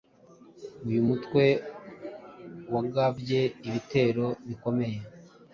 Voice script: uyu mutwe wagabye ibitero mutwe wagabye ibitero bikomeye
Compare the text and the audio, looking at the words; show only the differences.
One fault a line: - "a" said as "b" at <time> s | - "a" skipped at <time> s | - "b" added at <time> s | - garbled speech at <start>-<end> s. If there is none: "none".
- "mutwe wagabye ibitero" skipped at 4.3 s